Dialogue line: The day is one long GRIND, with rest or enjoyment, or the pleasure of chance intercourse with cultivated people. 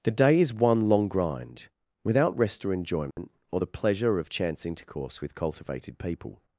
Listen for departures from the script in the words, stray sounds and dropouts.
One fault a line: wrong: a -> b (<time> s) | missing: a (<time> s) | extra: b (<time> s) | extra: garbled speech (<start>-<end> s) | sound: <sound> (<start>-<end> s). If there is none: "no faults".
wrong: with -> without (2.0 s)
sound: dropout (3.1-3.2 s)